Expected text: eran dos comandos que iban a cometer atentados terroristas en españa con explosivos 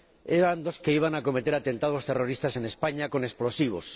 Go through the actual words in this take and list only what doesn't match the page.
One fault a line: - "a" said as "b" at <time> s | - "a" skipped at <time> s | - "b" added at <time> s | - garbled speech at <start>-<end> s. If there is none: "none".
- "comandos" skipped at 0.8 s